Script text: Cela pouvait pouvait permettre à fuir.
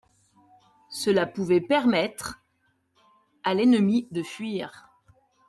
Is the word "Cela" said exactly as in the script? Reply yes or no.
yes